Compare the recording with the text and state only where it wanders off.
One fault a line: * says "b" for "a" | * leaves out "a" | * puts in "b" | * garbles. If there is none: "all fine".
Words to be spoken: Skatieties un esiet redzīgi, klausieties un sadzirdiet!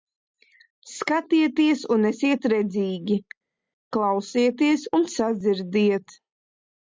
all fine